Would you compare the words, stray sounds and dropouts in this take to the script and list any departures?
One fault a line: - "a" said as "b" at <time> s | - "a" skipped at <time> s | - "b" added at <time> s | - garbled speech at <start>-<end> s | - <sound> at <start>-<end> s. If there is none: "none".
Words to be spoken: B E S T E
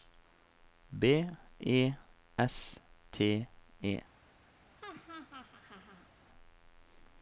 - laugh at 4.8-6.1 s